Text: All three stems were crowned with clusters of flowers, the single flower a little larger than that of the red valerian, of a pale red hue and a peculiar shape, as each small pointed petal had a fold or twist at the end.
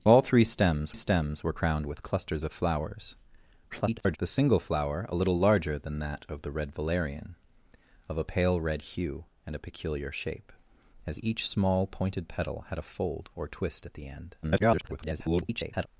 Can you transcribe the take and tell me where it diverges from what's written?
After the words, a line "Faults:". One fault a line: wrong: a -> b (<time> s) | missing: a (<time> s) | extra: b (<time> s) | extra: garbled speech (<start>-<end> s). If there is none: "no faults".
All three stems stems were crowned with clusters of flowers, [garbled] the single flower a little larger than that of the red valerian, of a pale red hue and a peculiar shape, as each small pointed petal had a fold or twist at the end. [garbled]
Faults:
extra: stems (0.9 s)
extra: garbled speech (3.7-4.2 s)
extra: garbled speech (14.4-15.9 s)